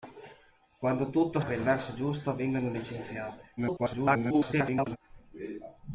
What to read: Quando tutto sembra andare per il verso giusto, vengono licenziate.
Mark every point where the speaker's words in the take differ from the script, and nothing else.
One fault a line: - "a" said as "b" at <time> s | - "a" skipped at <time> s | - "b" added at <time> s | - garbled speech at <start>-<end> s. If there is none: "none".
- "sembra andare" skipped at 1.4 s
- garbled speech at 3.6-5.0 s